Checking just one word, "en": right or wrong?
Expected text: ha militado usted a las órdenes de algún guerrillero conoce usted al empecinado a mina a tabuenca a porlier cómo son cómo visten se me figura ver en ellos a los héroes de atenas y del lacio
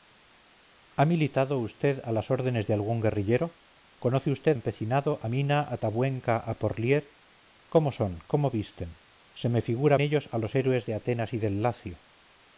wrong